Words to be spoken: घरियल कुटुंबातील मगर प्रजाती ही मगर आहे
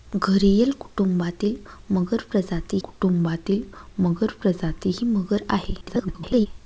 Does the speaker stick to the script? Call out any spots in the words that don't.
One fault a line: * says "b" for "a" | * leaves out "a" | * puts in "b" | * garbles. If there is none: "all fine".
* puts in "कुटुंबातील मगर प्रजाती"
* garbles